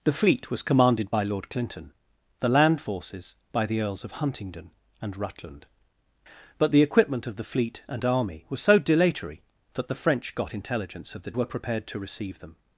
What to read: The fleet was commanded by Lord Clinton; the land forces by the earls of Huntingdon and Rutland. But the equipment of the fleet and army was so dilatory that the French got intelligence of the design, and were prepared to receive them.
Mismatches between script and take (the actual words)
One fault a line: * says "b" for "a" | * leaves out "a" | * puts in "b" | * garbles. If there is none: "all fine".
* leaves out "design and"